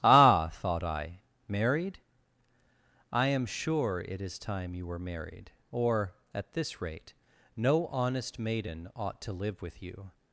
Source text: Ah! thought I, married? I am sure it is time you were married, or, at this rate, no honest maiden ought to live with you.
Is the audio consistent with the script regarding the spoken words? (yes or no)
yes